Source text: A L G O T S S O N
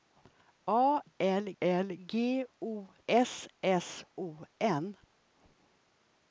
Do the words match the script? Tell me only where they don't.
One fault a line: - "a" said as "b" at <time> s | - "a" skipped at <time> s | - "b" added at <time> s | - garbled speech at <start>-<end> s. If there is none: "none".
- "L" added at 1.6 s
- "T" skipped at 2.9 s